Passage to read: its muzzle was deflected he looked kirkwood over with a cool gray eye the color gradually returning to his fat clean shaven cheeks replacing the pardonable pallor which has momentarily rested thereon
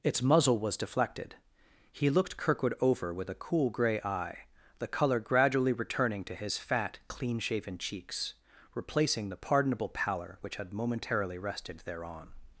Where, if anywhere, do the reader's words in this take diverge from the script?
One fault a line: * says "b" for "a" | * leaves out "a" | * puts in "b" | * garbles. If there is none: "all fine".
* says "had" for "has"